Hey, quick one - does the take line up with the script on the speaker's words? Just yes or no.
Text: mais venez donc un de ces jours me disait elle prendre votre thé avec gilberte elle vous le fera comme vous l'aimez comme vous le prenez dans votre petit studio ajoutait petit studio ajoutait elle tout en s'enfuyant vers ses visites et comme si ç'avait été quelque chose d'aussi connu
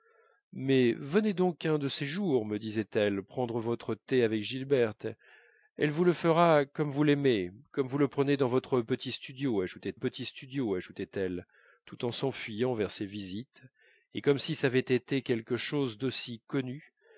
yes